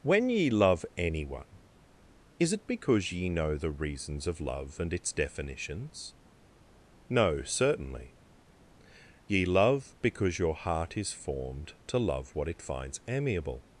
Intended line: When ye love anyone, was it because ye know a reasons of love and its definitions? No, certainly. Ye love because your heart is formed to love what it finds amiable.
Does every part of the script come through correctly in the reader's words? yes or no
no